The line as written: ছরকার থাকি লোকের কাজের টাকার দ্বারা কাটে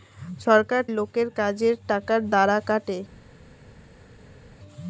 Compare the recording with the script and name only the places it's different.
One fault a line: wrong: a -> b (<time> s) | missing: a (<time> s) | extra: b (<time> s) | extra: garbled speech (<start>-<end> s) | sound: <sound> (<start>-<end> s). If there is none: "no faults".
missing: থাকি (0.8 s)